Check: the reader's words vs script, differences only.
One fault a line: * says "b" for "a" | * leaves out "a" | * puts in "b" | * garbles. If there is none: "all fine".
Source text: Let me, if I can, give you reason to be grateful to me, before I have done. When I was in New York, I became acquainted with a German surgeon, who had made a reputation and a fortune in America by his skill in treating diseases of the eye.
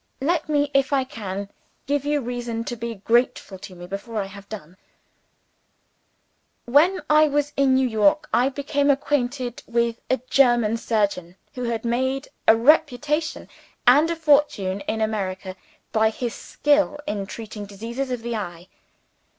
all fine